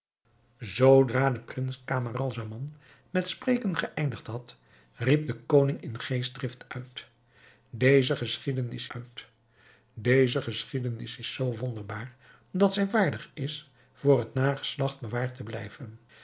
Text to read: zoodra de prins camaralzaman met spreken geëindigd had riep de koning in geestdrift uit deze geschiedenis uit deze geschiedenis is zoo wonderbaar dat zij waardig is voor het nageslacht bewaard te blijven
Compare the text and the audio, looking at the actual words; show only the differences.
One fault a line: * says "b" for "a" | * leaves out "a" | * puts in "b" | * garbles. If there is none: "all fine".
all fine